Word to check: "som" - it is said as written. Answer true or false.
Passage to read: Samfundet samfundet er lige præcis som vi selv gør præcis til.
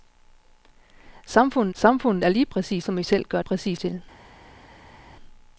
true